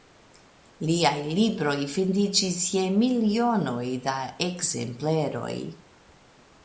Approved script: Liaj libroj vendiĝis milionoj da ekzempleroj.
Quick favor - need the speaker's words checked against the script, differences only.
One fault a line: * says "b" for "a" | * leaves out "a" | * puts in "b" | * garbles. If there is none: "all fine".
* puts in "je"